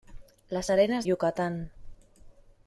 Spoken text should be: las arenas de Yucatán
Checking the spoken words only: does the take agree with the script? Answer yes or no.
no